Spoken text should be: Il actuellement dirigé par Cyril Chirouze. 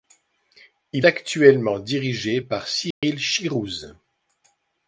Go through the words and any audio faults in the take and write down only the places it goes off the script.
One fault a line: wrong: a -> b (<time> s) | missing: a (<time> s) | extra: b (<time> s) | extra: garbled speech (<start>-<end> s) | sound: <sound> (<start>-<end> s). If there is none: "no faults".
sound: dropout (2.9-3.0 s)